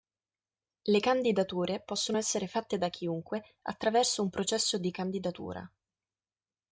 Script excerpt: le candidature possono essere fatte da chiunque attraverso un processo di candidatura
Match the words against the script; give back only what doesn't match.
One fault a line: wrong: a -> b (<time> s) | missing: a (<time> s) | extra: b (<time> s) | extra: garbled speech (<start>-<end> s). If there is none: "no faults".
no faults